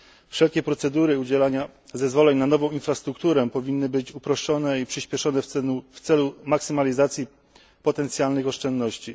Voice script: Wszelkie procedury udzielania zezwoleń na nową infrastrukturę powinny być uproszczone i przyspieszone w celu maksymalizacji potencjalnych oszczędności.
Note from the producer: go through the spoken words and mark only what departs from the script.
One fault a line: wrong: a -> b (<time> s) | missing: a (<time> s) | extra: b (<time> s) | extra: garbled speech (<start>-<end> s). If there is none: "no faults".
no faults